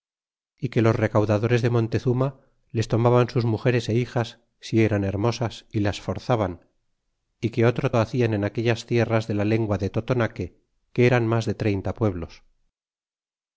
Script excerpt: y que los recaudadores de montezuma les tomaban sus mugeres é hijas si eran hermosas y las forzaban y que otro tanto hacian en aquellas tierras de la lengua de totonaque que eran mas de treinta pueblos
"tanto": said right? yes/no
no